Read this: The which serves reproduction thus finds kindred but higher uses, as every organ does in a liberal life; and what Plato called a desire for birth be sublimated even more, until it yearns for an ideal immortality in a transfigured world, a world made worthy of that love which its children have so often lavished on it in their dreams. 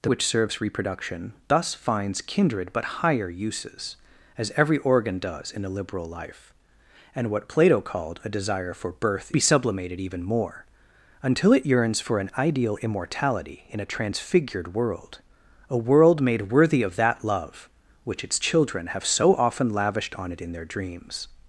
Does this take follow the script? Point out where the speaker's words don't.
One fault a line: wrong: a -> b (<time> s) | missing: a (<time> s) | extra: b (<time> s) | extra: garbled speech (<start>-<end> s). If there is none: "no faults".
no faults